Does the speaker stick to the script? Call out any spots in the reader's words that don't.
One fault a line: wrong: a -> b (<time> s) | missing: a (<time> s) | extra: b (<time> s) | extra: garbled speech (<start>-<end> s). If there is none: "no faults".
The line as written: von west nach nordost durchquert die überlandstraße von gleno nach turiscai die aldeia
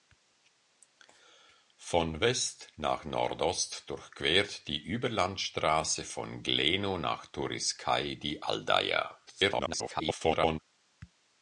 extra: garbled speech (9.3-10.6 s)